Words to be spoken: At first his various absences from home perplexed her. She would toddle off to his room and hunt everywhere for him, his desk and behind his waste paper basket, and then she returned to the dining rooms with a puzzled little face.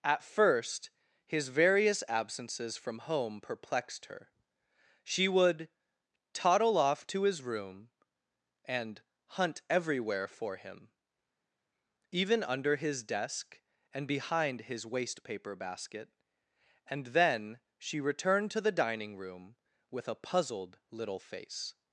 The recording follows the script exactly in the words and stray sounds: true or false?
false